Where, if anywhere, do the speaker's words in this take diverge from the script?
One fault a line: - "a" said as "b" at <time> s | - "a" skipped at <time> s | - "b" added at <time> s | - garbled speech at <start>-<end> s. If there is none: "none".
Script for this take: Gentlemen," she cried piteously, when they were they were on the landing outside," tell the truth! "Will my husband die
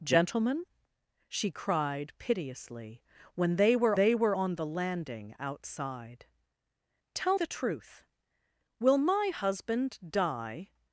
none